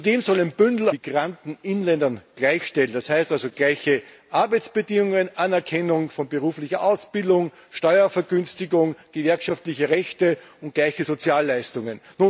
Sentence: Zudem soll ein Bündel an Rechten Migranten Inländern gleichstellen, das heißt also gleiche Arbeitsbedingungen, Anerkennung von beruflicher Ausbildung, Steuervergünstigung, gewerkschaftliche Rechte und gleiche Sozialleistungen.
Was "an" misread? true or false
true